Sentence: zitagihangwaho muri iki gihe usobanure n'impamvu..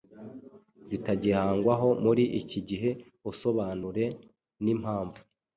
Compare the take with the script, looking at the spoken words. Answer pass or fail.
pass